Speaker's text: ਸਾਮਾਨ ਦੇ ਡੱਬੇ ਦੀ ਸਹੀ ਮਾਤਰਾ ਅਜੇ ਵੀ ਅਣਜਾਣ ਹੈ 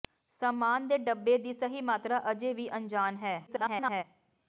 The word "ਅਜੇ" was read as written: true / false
true